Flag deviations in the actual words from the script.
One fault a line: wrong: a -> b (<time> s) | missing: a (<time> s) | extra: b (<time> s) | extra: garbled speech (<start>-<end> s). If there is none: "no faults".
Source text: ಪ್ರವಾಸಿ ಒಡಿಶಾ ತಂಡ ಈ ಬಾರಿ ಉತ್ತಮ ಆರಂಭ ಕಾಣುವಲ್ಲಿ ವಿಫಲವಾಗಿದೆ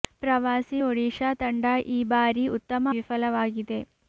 missing: ಆರಂಭ ಕಾಣುವಲ್ಲಿ (2.9 s)